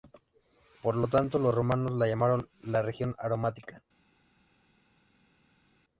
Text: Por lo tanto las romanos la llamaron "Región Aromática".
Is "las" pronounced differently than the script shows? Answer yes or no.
yes